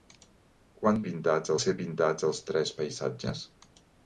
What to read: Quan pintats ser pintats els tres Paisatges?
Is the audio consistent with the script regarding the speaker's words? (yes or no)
yes